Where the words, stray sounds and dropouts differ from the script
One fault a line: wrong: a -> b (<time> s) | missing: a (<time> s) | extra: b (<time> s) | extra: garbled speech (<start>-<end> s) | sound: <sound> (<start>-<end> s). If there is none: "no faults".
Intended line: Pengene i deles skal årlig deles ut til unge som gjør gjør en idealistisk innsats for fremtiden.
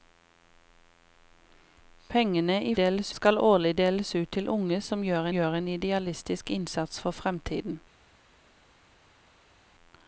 no faults